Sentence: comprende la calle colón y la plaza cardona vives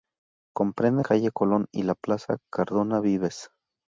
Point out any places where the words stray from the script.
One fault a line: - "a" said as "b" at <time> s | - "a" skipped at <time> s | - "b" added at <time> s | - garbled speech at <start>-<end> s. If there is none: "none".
- "la" skipped at 1.0 s